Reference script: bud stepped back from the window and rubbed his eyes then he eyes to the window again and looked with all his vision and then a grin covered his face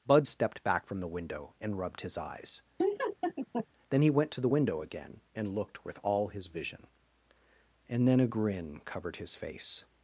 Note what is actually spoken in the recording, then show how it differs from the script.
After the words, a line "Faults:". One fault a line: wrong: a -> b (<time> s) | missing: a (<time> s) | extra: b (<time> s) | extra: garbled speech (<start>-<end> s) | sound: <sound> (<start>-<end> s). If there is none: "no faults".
bud stepped back from the window and rubbed his eyes then he went to the window again and looked with all his vision and then a grin covered his face
Faults:
sound: laugh (2.8-3.7 s)
wrong: eyes -> went (4.1 s)